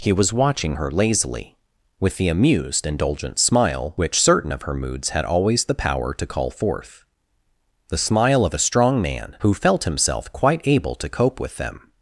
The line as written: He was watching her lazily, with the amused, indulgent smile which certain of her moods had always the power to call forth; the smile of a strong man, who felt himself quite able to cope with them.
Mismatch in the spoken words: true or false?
false